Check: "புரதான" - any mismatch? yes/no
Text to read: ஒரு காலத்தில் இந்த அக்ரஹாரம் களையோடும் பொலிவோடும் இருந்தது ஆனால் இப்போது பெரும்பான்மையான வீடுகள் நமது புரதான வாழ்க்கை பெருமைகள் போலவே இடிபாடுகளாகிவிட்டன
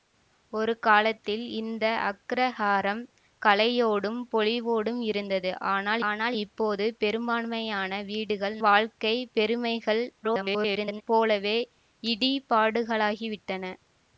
yes